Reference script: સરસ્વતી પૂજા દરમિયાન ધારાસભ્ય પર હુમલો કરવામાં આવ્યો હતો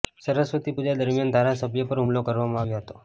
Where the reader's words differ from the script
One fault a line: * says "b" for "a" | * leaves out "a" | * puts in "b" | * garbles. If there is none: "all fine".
all fine